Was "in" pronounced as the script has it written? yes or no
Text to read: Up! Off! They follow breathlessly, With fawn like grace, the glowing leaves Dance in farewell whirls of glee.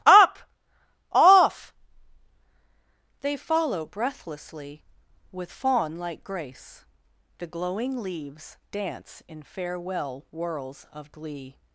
yes